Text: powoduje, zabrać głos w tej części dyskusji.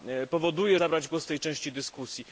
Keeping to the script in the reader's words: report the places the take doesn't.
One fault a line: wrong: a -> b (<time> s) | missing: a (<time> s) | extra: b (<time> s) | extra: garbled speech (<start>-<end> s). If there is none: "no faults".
no faults